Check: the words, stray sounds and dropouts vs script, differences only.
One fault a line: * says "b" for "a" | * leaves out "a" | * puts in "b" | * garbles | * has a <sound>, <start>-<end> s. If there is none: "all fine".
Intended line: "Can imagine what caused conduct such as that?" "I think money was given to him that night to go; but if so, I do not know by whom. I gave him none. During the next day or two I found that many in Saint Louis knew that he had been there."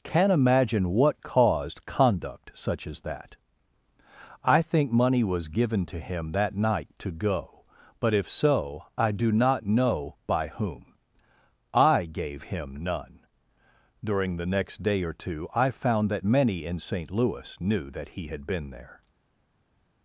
all fine